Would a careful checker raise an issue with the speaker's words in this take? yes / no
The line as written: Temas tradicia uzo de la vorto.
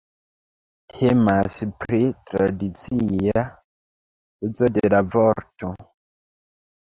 yes